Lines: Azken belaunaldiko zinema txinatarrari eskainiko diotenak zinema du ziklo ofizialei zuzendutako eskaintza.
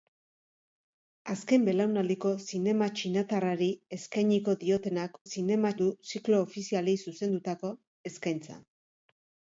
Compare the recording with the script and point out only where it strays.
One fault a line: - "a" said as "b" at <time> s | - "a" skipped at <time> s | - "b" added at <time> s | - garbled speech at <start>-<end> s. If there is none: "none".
none